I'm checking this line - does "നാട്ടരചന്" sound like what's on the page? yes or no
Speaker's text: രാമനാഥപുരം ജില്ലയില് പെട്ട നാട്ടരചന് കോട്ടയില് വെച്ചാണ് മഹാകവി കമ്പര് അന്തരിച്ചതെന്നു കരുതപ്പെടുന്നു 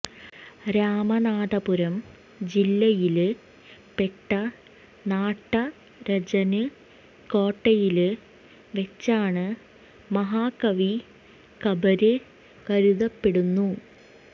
yes